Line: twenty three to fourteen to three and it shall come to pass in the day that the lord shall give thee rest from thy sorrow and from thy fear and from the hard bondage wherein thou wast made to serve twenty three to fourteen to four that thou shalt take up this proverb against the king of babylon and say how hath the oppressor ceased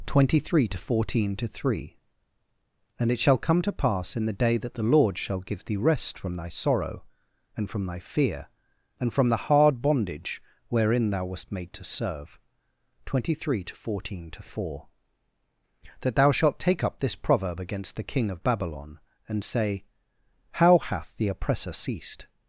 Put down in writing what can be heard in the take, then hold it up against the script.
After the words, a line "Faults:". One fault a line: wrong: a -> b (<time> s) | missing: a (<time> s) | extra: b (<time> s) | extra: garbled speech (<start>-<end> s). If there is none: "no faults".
twenty three to fourteen to three and it shall come to pass in the day that the lord shall give thee rest from thy sorrow and from thy fear and from the hard bondage wherein thou wast made to serve twenty three to fourteen to four that thou shalt take up this proverb against the king of babylon and say how hath the oppressor ceased
Faults:
no faults